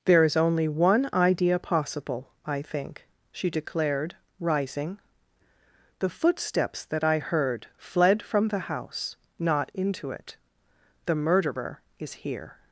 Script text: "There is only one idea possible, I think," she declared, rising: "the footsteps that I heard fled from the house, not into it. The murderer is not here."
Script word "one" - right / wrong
right